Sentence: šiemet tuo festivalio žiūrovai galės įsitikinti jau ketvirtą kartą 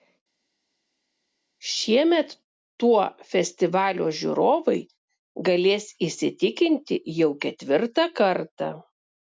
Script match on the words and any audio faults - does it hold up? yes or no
yes